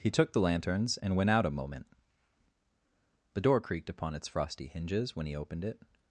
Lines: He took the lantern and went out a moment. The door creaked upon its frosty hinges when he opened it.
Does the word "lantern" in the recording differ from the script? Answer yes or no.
yes